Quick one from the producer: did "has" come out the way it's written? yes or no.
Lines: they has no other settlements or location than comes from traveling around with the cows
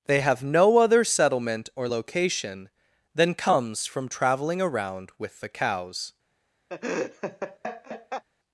no